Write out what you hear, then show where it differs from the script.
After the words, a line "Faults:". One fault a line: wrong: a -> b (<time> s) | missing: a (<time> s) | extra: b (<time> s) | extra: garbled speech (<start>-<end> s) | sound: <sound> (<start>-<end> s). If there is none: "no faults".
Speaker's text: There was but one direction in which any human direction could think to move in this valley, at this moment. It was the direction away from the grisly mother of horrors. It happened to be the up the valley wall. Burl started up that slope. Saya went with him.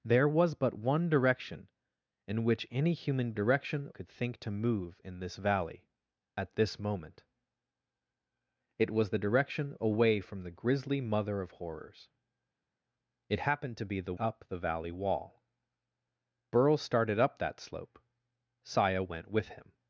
There was but one direction in which any human direction could think to move in this valley, at this moment. It was the direction away from the grisly mother of horrors. It happened to be the up the valley wall. Burl started up that slope. Saya went with him.
Faults:
no faults